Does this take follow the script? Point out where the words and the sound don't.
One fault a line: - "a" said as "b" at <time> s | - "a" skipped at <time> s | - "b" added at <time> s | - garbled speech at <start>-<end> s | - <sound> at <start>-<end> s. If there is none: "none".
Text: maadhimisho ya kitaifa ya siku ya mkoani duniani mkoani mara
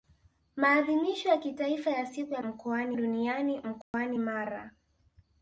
- dropout at 3.8-3.9 s